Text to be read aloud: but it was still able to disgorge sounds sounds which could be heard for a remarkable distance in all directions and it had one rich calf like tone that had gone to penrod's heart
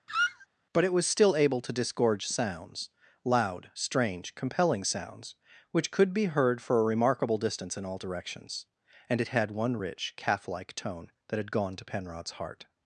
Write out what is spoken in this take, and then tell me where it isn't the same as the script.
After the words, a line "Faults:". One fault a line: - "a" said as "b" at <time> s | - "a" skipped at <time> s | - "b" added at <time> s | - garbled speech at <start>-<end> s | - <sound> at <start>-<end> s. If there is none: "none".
but it was still able to disgorge sounds loud strange compelling sounds which could be heard for a remarkable distance in all directions and it had one rich calf like tone that had gone to penrod's heart
Faults:
- squeak at 0.1-0.5 s
- "loud strange compelling" added at 3.2 s